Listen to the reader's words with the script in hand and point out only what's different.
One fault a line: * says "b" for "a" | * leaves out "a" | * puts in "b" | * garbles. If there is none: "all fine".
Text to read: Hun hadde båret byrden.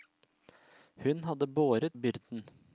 all fine